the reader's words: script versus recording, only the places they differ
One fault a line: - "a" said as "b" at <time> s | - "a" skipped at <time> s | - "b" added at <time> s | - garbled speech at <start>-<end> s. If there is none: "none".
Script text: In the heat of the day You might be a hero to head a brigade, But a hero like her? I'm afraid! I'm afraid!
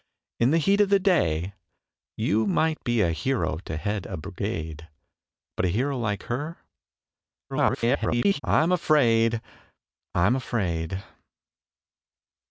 - garbled speech at 7.5-8.4 s